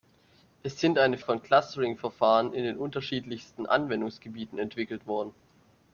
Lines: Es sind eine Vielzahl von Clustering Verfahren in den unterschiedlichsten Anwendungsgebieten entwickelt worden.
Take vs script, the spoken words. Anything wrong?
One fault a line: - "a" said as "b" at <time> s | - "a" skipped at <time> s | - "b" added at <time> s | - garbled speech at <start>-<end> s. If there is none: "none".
- "Vielzahl" skipped at 1.2 s